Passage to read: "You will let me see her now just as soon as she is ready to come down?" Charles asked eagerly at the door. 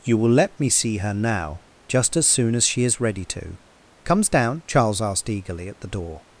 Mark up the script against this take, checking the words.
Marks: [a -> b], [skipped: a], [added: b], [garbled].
"You will let me see her now just as soon as she is ready to [come -> comes] down?" Charles asked eagerly at the door.